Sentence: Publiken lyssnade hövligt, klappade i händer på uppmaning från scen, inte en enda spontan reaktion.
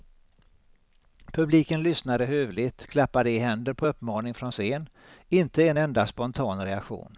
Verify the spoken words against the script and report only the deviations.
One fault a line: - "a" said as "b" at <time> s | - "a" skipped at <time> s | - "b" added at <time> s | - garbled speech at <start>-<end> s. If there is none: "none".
none